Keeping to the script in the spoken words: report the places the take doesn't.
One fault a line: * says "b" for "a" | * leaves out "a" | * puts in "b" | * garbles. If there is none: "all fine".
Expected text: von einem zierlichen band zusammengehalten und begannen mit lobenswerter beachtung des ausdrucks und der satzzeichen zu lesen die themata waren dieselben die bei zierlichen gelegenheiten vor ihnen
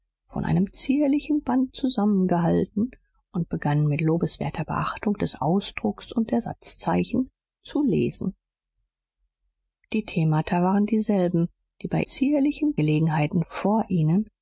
all fine